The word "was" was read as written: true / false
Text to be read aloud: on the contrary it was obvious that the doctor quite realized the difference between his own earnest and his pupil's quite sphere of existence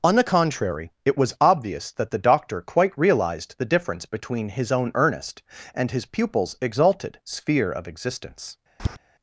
true